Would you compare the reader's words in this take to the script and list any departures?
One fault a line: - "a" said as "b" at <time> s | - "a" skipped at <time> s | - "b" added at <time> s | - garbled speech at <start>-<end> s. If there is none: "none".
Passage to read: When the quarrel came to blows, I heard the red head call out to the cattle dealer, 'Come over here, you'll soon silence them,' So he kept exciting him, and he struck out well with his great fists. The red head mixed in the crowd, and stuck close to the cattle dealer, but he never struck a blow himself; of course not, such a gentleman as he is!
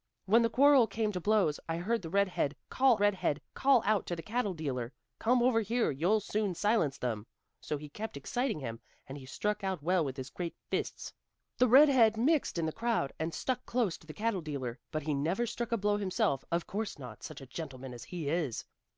- "red head call" added at 3.0 s